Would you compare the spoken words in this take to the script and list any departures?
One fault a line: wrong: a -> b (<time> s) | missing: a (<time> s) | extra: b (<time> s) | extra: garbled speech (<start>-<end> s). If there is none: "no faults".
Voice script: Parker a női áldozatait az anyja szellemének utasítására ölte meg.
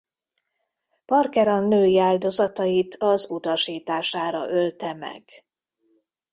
missing: anyja szellemének (3.3 s)